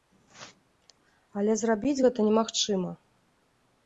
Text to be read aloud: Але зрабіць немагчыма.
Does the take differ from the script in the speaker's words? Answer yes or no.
yes